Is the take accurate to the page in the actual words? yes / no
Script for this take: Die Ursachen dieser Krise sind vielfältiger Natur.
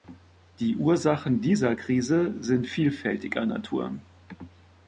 yes